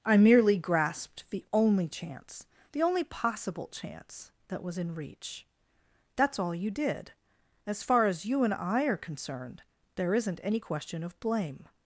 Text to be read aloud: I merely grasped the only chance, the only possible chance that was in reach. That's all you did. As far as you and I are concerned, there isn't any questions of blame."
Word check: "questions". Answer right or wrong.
wrong